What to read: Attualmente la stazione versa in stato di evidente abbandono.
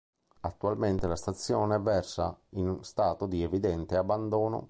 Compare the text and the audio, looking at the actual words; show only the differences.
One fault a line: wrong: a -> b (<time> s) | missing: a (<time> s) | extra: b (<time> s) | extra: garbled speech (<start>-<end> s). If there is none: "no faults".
no faults